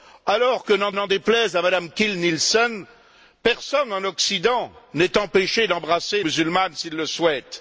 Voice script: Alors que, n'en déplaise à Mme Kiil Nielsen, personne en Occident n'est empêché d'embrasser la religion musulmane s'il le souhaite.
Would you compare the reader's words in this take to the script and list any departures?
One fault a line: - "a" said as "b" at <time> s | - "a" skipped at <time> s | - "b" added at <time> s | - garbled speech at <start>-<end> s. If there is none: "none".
- "n'en" added at 0.9 s
- "la religion" skipped at 6.2 s